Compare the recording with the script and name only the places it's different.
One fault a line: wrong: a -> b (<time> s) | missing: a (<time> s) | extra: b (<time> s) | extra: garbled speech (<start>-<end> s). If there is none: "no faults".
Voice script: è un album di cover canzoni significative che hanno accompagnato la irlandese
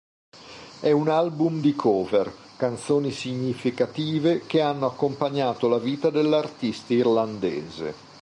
extra: vita dell'artista (5.8 s)